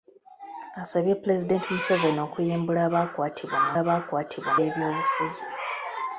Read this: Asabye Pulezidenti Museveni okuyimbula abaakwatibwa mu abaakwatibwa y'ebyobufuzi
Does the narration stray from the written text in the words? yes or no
no